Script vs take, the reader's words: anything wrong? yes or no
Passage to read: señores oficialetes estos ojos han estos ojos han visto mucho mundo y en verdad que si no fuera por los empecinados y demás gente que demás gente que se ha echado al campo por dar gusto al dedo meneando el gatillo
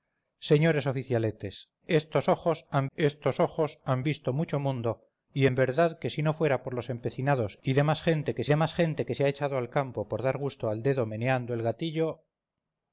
no